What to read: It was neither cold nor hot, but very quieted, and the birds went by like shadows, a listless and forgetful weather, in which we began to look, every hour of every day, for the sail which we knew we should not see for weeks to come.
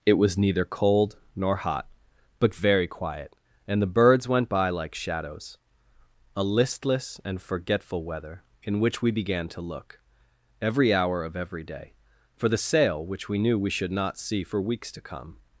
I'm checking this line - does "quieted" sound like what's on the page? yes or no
no